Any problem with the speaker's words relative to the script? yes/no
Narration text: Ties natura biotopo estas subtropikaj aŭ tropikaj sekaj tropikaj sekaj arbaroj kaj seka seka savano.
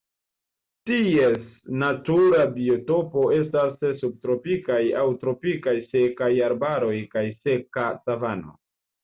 yes